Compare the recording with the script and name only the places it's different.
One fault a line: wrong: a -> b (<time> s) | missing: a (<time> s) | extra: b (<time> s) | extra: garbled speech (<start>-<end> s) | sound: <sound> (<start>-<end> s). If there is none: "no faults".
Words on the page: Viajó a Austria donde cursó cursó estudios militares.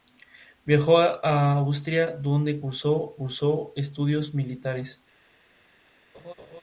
sound: laugh (6.1-6.6 s)